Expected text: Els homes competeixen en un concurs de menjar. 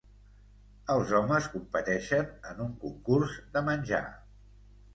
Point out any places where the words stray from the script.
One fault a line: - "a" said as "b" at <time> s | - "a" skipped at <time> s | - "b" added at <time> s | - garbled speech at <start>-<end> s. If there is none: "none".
none